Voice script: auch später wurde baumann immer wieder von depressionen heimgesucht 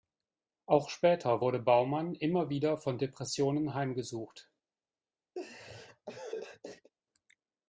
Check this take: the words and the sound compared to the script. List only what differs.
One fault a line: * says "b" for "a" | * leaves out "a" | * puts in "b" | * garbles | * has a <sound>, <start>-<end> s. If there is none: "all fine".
* has a laugh, 5.4-6.9 s